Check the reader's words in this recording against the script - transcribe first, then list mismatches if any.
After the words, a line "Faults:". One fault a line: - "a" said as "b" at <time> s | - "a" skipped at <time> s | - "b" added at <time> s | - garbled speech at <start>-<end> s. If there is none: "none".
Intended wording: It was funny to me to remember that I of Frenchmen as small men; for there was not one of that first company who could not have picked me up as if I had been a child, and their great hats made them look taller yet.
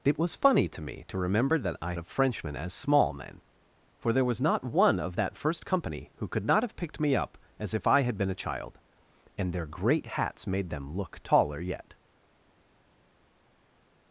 It was funny to me to remember that I of Frenchmen as small men; for there was not one of that first company who could not have picked me up as if I had been a child, and their great hats made them look taller yet.
Faults:
none